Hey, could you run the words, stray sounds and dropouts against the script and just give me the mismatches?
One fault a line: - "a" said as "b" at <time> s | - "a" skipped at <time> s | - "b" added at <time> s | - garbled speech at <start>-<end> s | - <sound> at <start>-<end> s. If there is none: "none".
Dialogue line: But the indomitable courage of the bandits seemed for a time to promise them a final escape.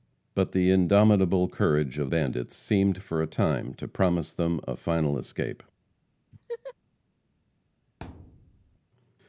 - "the" skipped at 2.1 s
- laugh at 6.3-6.7 s
- thud at 8.0-8.8 s